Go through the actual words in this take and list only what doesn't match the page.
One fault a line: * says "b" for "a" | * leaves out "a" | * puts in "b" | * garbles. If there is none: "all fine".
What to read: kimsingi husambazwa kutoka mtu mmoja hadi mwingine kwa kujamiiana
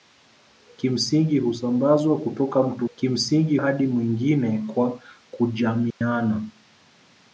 * says "kimsingi" for "mmoja"